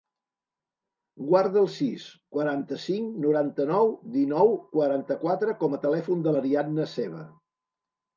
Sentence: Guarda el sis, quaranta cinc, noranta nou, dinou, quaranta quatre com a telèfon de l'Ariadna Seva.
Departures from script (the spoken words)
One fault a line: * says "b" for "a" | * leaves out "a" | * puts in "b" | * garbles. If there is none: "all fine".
all fine